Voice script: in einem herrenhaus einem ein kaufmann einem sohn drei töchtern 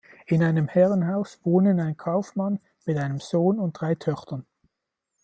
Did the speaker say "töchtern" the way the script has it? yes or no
yes